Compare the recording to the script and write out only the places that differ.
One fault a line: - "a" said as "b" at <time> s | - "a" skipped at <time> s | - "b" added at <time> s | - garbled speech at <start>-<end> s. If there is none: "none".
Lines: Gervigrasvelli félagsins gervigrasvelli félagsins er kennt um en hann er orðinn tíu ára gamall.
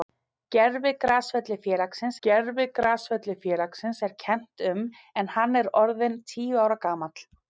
none